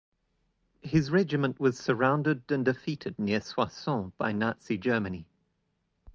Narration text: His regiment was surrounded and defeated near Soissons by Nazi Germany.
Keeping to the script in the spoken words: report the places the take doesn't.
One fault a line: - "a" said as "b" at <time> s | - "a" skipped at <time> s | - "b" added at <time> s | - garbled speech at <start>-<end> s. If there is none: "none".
none